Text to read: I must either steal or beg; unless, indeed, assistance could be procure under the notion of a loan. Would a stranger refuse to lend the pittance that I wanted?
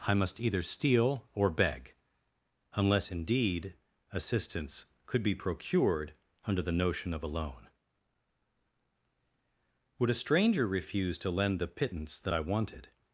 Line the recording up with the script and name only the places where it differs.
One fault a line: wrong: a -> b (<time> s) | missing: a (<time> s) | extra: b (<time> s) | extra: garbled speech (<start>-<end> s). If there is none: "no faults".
wrong: procure -> procured (5.3 s)